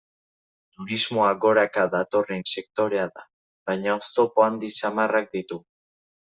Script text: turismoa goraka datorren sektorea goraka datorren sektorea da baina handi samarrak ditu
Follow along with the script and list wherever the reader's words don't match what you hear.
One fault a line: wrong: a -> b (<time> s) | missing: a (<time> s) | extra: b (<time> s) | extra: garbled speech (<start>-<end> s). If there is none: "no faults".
missing: goraka datorren sektorea (3.1 s)
extra: oztopo (4.0 s)